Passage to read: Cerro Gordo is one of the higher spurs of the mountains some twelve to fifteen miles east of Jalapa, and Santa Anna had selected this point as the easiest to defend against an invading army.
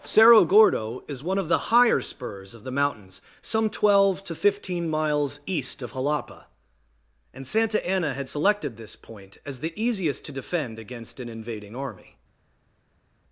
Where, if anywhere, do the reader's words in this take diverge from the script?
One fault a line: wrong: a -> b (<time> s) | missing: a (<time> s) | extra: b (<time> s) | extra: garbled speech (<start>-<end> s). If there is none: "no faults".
no faults